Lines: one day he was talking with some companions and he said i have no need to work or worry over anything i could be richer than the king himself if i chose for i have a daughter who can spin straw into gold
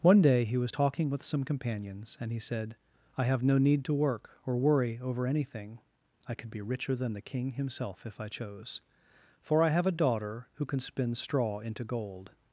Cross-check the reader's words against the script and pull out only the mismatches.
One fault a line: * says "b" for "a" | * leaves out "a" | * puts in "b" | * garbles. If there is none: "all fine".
all fine